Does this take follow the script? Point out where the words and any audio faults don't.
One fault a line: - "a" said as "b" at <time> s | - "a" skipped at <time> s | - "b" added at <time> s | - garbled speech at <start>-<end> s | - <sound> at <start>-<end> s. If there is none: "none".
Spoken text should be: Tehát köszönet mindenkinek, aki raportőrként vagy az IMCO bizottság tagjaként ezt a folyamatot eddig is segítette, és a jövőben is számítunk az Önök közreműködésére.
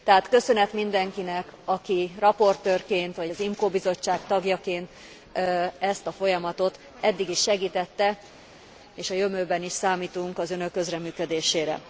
none